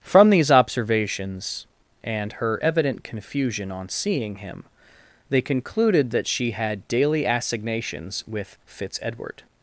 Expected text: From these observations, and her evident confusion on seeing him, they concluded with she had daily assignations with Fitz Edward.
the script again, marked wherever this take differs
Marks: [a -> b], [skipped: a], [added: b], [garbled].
From these observations, and her evident confusion on seeing him, they concluded [with -> that] she had daily assignations with Fitz Edward.